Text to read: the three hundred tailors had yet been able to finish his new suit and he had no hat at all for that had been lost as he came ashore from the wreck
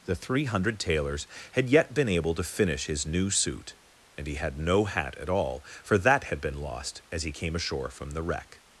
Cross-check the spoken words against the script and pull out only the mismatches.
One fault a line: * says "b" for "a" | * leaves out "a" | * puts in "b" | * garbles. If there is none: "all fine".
all fine